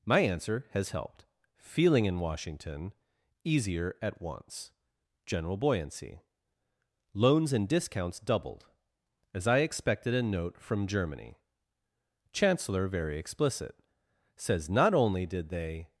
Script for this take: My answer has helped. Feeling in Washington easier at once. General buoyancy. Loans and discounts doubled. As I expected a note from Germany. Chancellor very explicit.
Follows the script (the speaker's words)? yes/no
no